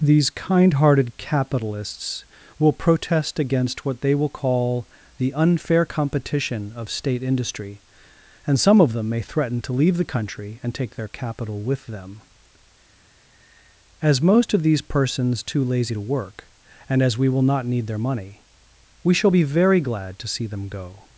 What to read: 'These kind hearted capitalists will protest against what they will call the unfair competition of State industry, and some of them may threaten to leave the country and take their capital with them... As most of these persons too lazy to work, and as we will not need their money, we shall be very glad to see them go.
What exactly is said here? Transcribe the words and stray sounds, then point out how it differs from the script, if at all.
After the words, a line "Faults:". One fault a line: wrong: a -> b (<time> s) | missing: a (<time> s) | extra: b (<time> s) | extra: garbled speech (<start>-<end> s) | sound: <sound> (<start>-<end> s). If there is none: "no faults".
'These kind hearted capitalists will protest against what they will call the unfair competition of State industry, and some of them may threaten to leave the country and take their capital with them... As most of these persons too lazy to work, and as we will not need their money, we shall be very glad to see them go.
Faults:
no faults